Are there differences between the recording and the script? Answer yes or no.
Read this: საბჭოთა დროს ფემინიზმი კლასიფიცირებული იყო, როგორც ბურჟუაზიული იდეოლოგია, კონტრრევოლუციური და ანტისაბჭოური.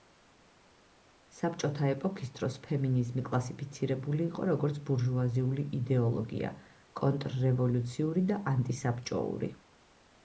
yes